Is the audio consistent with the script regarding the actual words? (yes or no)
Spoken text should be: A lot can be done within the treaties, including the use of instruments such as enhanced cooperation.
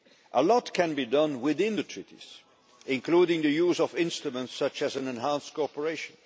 yes